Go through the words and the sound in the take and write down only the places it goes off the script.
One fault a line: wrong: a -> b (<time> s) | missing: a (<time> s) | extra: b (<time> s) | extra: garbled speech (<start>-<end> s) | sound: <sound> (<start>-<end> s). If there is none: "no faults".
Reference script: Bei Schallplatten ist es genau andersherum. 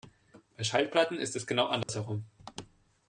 sound: dropout (1.8-1.9 s)